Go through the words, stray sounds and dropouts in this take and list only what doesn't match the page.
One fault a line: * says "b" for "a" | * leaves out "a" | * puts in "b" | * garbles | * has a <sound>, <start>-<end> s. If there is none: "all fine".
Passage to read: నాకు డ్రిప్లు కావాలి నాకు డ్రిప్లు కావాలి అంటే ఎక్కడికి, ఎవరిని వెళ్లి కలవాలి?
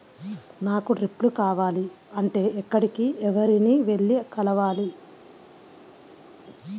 * leaves out "నాకు డ్రిప్లు కావాలి"